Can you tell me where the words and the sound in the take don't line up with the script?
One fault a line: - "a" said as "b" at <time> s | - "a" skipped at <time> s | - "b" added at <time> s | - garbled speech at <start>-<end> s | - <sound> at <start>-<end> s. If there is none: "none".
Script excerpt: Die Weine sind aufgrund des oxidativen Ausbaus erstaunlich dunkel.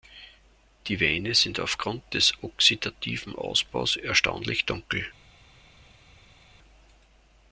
none